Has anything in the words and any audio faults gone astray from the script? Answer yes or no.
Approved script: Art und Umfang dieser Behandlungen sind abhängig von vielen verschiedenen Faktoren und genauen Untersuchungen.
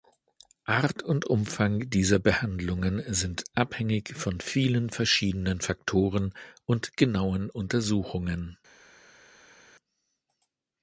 no